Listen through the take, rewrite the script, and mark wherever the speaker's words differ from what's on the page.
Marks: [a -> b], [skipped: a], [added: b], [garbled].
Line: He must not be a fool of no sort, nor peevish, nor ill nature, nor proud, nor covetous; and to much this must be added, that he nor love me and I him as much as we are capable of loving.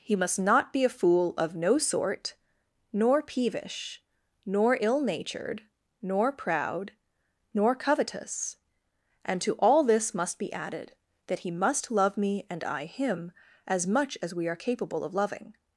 He must not be a fool of no sort, nor peevish, nor ill [nature, -> natured] nor proud, nor covetous; and to [much -> all] this must be added, that he [nor -> must] love me and I him as much as we are capable of loving.